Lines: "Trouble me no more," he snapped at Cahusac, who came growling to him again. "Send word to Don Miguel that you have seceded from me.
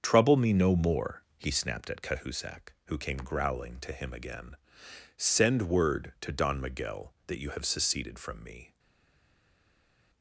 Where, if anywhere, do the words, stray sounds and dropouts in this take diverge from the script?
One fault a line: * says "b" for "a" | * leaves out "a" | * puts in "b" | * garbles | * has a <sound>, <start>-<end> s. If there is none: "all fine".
all fine